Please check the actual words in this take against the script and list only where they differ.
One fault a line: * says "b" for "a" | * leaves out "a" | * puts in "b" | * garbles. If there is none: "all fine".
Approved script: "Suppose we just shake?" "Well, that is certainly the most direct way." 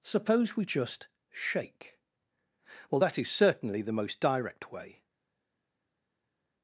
all fine